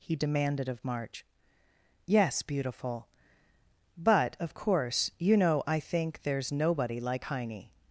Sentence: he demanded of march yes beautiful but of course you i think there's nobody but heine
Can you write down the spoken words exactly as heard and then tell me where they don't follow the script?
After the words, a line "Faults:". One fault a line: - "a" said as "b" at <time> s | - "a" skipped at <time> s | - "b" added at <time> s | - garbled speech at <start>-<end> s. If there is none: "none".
he demanded of march yes beautiful but of course you know i think there's nobody like heine
Faults:
- "know" added at 5.4 s
- "but" said as "like" at 7.0 s